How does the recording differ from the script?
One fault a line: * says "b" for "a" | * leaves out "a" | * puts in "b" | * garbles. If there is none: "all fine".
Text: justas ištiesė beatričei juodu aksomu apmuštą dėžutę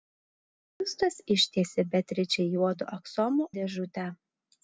* leaves out "apmuštą"